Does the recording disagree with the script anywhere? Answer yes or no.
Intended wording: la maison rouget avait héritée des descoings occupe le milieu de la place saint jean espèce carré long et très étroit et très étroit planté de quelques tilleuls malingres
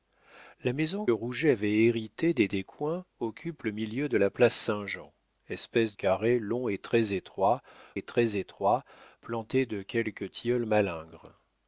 no